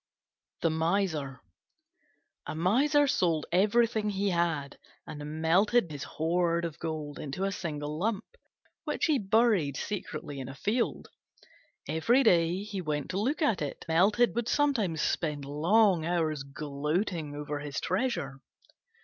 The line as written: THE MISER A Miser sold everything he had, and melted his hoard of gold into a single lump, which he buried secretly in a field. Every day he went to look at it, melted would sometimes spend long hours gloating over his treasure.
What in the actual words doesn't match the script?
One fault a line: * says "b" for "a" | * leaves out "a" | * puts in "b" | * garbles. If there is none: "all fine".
all fine